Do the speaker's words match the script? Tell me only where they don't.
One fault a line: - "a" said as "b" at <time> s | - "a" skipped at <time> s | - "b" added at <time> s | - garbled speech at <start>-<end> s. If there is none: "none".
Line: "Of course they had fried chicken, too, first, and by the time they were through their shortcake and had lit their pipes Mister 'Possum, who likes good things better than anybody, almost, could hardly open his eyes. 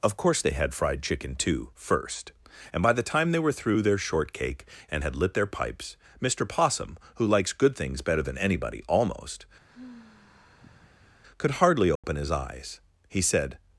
- "He said" added at 13.1 s